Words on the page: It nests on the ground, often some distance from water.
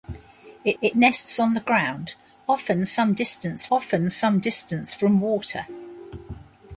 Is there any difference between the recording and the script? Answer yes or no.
yes